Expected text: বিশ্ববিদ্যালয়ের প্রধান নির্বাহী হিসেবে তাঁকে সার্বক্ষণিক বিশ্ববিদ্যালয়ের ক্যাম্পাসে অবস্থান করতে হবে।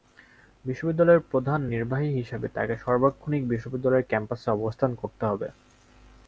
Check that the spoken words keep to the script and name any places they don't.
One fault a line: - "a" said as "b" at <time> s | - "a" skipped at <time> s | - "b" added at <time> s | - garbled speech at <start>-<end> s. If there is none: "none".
none